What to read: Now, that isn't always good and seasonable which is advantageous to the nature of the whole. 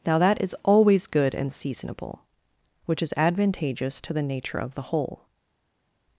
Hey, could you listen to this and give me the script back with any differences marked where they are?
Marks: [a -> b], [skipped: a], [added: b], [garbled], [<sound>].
Now, that [isn't -> is] always good and seasonable which is advantageous to the nature of the whole.